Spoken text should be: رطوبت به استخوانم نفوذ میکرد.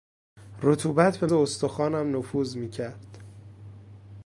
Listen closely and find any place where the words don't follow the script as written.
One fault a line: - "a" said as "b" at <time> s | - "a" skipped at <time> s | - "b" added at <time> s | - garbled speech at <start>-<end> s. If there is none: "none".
none